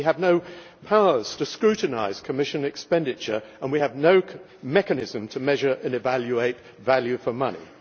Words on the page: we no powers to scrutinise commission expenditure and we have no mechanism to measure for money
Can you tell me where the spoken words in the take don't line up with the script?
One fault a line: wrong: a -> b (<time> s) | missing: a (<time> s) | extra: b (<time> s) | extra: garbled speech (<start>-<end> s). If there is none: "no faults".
extra: have (0.1 s)
extra: and evaluate value (5.7 s)